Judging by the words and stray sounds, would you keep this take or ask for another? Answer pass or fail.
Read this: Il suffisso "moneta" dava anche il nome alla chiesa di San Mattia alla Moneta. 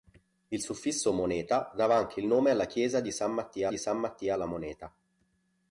fail